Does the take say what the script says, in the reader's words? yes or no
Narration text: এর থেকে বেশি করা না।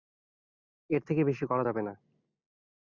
no